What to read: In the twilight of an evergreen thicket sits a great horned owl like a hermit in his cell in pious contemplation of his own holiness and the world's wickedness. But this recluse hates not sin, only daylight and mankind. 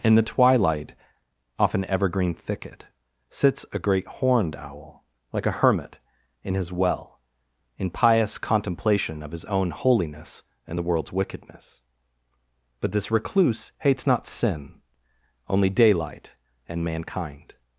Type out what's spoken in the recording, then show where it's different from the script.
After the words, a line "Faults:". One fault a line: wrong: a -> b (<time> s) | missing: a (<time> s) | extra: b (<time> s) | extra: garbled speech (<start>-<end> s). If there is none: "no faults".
In the twilight off an evergreen thicket sits a great horned owl like a hermit in his well in pious contemplation of his own holiness and the world's wickedness. But this recluse hates not sin, only daylight and mankind.
Faults:
wrong: of -> off (1.6 s)
wrong: cell -> well (6.7 s)